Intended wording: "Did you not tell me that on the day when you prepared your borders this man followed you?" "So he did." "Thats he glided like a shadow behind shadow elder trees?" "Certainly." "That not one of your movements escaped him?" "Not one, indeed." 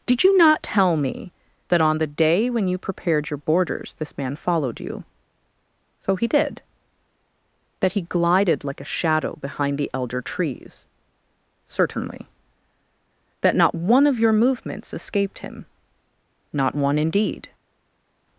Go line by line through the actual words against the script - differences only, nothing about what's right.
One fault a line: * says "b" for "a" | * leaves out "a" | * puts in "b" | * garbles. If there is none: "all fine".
* says "That" for "Thats"
* says "the" for "shadow"